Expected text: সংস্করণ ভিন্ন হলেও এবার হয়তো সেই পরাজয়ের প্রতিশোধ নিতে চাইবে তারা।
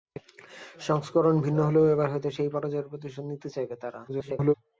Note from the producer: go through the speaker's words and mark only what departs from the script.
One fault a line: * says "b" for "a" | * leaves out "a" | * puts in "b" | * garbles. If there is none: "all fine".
* garbles